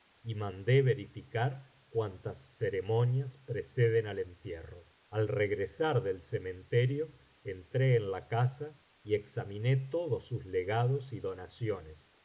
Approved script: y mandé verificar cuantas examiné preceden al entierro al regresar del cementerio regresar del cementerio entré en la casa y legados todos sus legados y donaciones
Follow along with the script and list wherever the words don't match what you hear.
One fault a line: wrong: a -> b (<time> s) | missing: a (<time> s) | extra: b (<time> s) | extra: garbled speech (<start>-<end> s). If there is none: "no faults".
wrong: examiné -> ceremonias (2.6 s)
missing: regresar del cementerio (7.1 s)
wrong: legados -> examiné (9.2 s)